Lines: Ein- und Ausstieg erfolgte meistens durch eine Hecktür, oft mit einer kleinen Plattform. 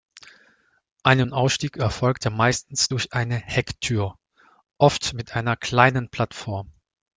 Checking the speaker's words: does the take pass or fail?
pass